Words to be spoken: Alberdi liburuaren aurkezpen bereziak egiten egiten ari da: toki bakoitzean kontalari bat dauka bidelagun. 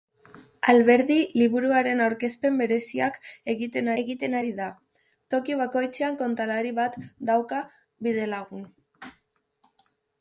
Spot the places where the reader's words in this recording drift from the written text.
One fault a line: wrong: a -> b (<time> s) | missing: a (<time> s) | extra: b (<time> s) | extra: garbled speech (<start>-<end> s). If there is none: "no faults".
no faults